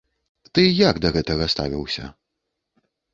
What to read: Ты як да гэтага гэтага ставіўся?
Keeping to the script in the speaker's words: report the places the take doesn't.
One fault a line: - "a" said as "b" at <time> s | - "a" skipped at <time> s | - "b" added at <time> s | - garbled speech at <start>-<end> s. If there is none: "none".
- "гэтага" skipped at 1.5 s